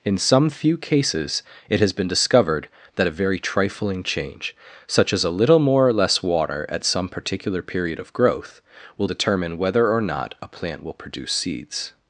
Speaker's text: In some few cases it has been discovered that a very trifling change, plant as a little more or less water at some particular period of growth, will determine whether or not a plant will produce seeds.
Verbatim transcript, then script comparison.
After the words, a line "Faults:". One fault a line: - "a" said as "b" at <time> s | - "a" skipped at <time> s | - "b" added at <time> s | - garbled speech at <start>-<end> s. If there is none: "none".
In some few cases it has been discovered that a very trifling change, such as a little more or less water at some particular period of growth, will determine whether or not a plant will produce seeds.
Faults:
- "plant" said as "such" at 4.9 s